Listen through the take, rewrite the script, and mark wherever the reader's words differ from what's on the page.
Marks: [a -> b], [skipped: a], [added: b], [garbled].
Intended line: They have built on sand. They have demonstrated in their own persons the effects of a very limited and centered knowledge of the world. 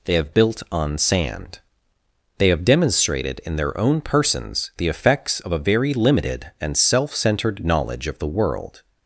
They have built on sand. They have demonstrated in their own persons the effects of a very limited and [added: self] centered knowledge of the world.